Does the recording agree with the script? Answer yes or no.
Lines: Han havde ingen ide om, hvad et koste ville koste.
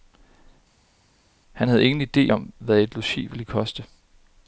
no